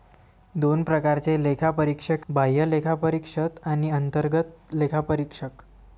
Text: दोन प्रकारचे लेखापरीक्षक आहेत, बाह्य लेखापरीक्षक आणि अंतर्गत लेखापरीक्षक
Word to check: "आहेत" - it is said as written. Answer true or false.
false